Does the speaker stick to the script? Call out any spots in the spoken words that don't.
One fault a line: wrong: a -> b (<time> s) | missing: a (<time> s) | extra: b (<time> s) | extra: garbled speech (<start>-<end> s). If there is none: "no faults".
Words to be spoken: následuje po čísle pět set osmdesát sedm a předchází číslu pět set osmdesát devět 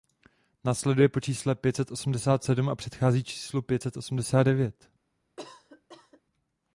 no faults